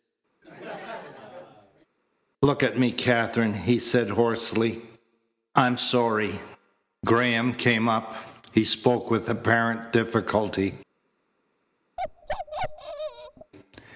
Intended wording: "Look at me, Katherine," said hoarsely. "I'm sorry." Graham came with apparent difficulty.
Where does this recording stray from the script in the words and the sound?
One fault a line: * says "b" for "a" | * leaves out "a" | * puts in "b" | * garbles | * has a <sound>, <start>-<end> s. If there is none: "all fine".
* has a laugh, 0.4-1.9 s
* puts in "he"
* puts in "up He spoke"
* has a bark, 12.0-13.5 s